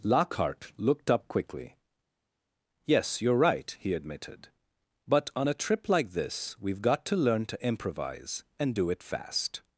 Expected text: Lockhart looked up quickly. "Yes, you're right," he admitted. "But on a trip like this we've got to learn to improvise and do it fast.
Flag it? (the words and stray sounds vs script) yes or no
no